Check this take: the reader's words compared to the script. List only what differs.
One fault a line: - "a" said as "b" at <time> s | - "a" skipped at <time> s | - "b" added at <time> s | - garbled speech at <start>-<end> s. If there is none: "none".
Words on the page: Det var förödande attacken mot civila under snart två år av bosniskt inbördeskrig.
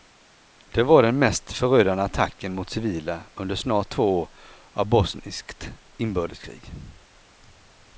- "den mest" added at 1.0 s